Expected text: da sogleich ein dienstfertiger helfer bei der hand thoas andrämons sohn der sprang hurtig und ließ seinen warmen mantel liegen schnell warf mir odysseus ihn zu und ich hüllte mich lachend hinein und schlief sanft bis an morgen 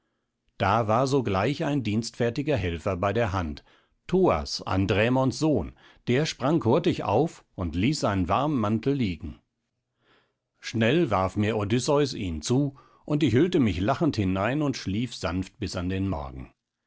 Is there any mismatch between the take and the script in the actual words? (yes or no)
yes